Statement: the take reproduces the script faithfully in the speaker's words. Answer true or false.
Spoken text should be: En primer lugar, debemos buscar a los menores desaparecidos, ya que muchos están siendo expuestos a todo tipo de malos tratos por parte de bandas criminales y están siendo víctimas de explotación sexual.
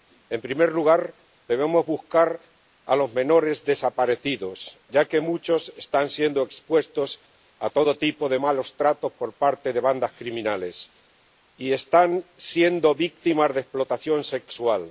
true